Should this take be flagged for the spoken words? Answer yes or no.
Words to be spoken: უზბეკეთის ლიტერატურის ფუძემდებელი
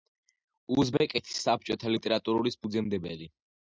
yes